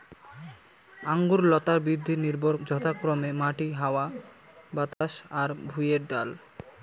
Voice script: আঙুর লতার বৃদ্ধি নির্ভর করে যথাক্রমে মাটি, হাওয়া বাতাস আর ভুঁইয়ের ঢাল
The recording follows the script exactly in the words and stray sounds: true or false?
false